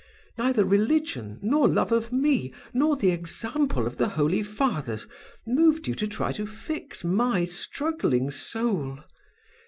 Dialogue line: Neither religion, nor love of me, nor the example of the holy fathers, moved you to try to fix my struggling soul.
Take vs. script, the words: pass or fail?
pass